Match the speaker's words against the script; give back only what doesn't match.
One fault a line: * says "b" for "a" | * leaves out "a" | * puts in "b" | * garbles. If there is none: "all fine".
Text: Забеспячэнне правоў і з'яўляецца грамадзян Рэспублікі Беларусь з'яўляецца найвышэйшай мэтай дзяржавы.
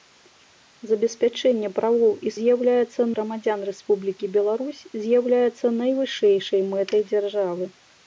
all fine